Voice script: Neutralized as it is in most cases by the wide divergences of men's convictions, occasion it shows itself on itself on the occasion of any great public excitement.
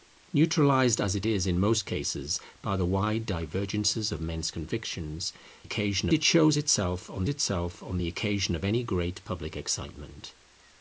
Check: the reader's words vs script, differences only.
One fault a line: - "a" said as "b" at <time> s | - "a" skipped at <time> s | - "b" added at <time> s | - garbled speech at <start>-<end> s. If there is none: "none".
none